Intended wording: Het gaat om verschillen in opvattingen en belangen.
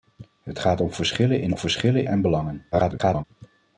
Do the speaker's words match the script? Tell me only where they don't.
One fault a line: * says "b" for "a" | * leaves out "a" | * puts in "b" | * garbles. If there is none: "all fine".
* says "verschillen" for "opvattingen"
* garbles